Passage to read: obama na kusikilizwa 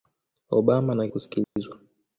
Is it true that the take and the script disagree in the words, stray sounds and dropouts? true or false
true